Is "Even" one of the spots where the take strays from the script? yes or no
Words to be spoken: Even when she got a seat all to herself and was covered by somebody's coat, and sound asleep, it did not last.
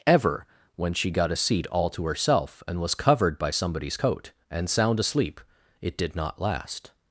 yes